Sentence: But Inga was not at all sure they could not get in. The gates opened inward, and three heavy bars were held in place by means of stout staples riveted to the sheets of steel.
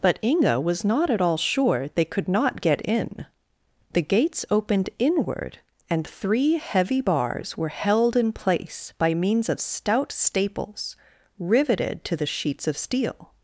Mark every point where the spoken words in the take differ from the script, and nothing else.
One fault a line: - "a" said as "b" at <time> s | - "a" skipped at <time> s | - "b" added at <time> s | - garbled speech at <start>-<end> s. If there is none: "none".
none